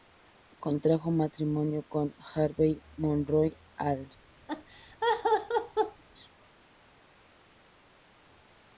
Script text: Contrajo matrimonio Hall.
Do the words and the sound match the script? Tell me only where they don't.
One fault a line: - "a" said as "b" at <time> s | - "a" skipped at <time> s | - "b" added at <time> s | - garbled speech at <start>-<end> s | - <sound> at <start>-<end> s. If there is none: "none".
- "con Harvey Monroe" added at 1.8 s
- laugh at 4.5-6.0 s